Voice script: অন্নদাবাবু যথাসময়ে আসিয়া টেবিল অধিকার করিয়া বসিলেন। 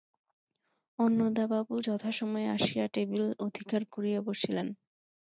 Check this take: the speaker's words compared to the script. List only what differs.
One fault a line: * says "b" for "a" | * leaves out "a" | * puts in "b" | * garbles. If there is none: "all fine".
all fine